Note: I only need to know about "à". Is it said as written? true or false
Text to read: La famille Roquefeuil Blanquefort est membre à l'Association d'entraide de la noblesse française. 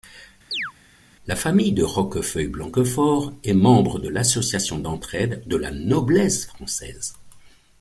false